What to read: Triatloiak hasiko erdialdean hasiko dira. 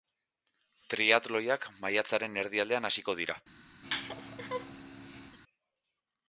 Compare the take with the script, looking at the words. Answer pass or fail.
fail